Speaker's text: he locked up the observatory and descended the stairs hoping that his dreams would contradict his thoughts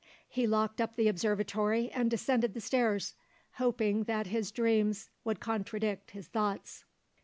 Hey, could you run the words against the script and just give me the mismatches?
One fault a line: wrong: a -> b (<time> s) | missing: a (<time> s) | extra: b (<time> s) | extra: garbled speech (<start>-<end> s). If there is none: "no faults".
no faults